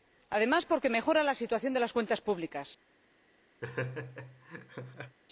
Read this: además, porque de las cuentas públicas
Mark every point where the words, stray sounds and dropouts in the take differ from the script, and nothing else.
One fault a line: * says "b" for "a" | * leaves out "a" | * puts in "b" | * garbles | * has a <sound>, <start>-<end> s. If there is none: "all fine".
* puts in "mejora la situación"
* has a laugh, 3.6-5.2 s